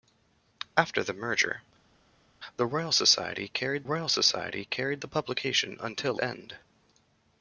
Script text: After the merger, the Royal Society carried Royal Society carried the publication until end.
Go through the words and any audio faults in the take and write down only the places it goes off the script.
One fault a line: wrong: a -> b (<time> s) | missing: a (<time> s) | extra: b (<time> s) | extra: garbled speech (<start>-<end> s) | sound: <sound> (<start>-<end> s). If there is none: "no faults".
no faults